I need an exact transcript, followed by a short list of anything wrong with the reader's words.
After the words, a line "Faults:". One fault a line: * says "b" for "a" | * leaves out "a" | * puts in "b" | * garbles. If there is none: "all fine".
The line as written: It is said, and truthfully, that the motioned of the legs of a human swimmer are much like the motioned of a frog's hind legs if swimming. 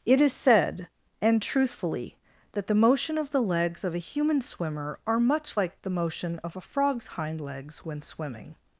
It is said, and truthfully, that the motion of the legs of a human swimmer are much like the motion of a frog's hind legs when swimming.
Faults:
* says "motion" for "motioned"
* says "motion" for "motioned"
* says "when" for "if"